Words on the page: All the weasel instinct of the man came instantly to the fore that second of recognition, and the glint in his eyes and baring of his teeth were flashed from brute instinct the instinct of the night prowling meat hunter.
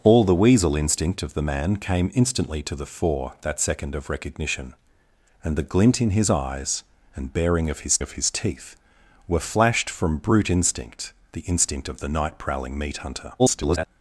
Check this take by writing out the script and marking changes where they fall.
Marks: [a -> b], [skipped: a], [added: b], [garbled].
All the weasel instinct of the man came instantly to the fore that second of recognition, and the glint in his eyes and baring of his [added: of his] teeth were flashed from brute instinct the instinct of the night prowling meat hunter. [garbled]